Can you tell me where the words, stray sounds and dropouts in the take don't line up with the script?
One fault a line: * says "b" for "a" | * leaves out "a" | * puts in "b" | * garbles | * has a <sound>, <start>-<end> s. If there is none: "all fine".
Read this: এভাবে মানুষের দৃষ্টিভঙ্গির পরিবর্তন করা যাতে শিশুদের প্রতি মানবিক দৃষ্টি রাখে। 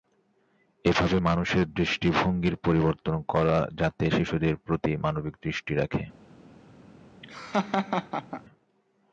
* has a laugh, 7.2-8.4 s